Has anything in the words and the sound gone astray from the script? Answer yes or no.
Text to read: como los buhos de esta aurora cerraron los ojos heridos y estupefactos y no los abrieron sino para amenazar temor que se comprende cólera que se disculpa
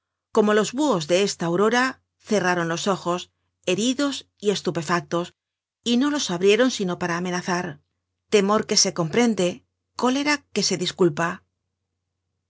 no